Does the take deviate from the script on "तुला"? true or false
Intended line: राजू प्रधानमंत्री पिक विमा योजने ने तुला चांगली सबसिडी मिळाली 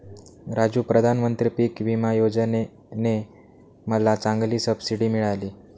true